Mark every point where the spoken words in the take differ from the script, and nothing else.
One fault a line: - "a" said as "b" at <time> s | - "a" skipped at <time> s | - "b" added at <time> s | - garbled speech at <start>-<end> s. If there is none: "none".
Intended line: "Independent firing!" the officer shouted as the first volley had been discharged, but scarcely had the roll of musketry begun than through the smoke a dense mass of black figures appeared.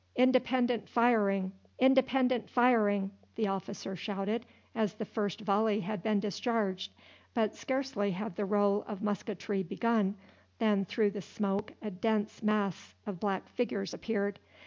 - "independent firing" added at 1.8 s